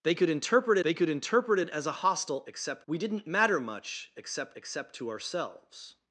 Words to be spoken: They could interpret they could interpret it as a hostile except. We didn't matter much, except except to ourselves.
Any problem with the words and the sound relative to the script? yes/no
no